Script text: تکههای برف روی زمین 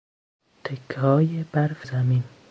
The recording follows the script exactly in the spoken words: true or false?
false